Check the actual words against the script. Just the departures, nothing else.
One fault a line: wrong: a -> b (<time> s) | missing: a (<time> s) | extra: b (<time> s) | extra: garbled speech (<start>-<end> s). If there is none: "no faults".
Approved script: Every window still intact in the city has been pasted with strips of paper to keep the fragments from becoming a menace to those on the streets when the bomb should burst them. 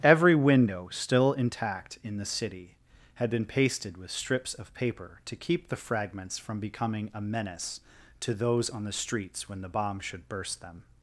wrong: has -> had (3.1 s)